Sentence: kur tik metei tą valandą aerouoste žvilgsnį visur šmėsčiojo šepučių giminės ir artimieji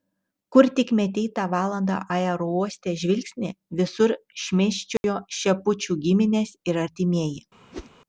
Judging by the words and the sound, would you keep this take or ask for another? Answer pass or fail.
fail